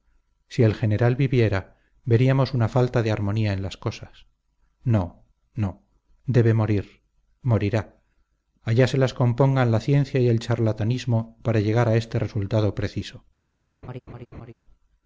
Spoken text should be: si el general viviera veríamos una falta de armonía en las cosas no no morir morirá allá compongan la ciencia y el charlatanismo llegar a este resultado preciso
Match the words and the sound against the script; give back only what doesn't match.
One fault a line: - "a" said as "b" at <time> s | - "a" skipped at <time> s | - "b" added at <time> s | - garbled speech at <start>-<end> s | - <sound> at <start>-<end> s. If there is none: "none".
- "debe" added at 6.2 s
- "se las" added at 8.9 s
- "para" added at 11.4 s
- laugh at 13.8-14.5 s